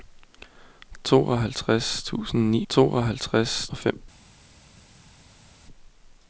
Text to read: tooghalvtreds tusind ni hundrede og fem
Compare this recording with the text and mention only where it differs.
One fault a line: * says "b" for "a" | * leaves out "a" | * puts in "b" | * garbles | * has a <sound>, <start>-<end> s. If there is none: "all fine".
* says "tooghalvtreds" for "hundrede"